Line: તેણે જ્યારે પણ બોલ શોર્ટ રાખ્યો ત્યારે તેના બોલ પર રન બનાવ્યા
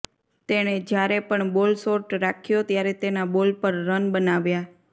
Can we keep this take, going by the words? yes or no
yes